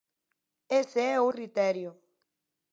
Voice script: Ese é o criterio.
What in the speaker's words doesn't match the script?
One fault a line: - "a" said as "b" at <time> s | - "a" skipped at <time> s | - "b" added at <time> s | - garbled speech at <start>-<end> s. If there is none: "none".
none